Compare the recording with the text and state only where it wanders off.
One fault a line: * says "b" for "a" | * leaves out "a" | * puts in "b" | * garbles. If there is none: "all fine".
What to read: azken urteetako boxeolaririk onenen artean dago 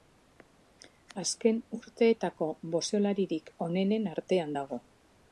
all fine